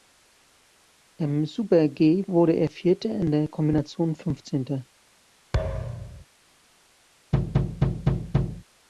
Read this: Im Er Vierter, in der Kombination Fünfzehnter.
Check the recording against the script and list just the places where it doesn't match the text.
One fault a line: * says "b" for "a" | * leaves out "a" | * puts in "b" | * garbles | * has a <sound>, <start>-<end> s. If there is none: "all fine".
* puts in "Super G wurde"
* has a thud, 5.5-6.3 s
* has a thud, 7.3-8.6 s